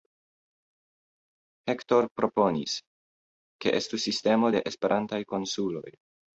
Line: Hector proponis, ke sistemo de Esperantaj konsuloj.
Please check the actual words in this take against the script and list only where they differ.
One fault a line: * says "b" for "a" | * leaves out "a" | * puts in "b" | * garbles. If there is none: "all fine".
* puts in "estu"